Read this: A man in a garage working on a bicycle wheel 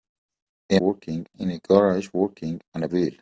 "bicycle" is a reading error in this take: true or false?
true